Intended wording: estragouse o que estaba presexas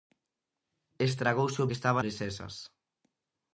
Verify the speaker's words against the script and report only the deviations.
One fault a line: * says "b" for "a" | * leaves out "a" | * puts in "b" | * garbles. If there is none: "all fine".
all fine